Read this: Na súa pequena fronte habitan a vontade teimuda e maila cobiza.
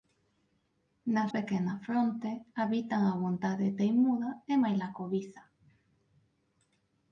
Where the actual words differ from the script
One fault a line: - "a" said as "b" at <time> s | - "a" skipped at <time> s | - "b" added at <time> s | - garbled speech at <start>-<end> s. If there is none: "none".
- "súa" skipped at 1.2 s